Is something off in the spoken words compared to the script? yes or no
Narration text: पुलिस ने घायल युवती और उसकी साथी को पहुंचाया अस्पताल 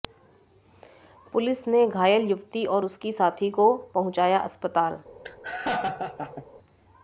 no